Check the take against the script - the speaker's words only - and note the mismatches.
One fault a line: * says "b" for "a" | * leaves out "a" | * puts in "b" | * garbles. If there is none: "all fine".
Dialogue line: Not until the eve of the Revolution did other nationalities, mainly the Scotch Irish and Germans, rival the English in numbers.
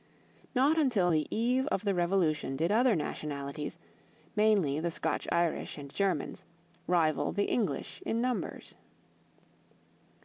all fine